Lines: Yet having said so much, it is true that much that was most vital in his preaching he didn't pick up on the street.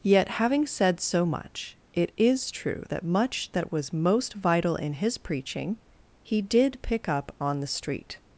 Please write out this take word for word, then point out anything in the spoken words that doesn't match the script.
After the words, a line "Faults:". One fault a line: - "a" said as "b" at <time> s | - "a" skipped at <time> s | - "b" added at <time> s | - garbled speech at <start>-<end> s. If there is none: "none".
Yet having said so much, it is true that much that was most vital in his preaching he did pick up on the street.
Faults:
- "didn't" said as "did" at 6.4 s